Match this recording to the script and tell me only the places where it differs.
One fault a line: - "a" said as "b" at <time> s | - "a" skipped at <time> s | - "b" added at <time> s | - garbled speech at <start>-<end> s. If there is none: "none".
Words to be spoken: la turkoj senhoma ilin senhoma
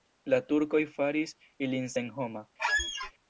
- "senhoma" said as "faris" at 0.9 s